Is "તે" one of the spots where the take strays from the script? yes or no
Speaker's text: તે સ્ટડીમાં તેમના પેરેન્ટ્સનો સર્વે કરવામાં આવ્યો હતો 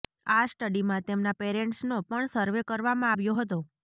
yes